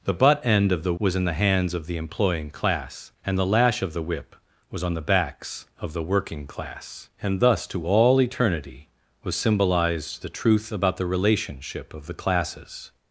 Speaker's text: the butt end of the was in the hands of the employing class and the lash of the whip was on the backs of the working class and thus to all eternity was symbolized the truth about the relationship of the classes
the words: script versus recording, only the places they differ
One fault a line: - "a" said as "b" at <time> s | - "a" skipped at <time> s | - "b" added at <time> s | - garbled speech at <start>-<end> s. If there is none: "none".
none